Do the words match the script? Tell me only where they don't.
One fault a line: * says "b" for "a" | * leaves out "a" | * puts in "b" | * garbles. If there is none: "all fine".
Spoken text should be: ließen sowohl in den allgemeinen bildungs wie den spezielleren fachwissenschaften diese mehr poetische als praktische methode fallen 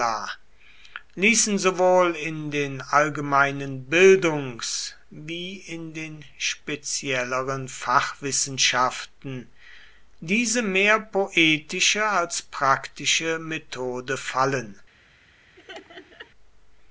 * puts in "in"